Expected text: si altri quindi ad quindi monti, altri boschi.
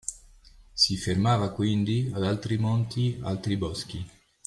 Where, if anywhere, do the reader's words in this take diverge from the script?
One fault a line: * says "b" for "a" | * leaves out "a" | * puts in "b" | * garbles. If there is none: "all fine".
* says "fermava" for "altri"
* says "altri" for "quindi"